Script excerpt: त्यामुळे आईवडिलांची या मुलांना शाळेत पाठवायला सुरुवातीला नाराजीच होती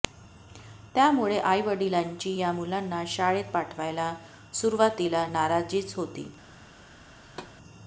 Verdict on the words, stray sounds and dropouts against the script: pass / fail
fail